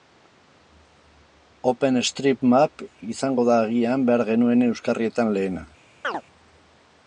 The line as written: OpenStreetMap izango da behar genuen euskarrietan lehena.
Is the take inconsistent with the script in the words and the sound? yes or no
yes